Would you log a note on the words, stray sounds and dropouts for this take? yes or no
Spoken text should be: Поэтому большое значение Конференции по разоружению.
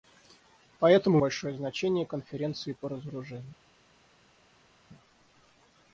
no